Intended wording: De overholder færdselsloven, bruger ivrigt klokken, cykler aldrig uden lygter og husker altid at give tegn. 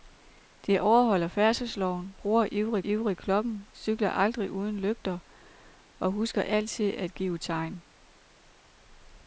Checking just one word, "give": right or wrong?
right